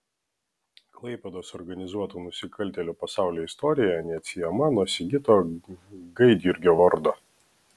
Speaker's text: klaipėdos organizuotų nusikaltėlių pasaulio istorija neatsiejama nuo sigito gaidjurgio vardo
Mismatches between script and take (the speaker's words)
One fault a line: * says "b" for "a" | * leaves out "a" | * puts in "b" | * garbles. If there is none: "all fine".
all fine